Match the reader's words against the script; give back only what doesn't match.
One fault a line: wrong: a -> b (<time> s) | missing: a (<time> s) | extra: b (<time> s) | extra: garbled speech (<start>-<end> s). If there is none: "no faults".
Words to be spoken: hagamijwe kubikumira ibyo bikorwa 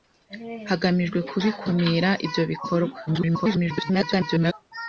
extra: garbled speech (3.1-4.5 s)